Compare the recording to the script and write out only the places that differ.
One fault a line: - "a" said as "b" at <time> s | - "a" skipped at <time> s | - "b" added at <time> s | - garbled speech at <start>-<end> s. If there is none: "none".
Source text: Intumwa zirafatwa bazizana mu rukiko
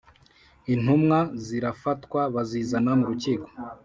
none